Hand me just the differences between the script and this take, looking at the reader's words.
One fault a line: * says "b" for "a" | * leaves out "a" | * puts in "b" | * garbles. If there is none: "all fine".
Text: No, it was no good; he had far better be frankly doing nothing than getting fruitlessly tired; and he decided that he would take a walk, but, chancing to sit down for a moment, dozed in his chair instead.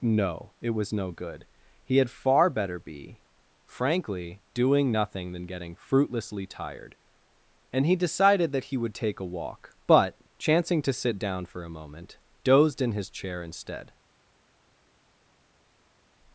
all fine